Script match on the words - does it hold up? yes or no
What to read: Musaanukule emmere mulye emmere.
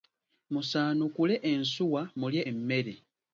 no